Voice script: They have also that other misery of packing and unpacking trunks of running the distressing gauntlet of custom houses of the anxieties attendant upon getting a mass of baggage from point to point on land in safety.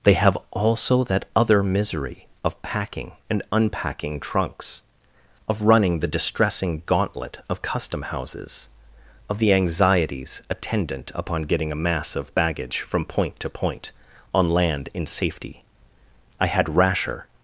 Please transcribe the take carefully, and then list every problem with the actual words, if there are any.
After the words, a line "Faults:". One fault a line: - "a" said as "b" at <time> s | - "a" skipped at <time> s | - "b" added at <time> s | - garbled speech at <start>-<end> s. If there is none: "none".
They have also that other misery of packing and unpacking trunks of running the distressing gauntlet of custom houses of the anxieties attendant upon getting a mass of baggage from point to point on land in safety. I had rasher
Faults:
- "I had rasher" added at 16.4 s